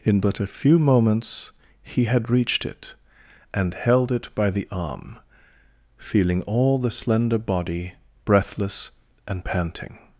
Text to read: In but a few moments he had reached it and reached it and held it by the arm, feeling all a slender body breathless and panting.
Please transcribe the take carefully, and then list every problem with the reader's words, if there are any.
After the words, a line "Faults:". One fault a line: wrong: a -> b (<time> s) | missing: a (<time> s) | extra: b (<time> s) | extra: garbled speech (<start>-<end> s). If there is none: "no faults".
In but a few moments he had reached it and held it by the arm, feeling all the slender body breathless and panting.
Faults:
missing: reached it and (3.7 s)
wrong: a -> the (6.8 s)